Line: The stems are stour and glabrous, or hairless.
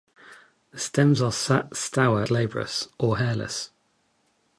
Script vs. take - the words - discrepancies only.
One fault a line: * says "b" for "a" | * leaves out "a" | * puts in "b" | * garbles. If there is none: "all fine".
* leaves out "and"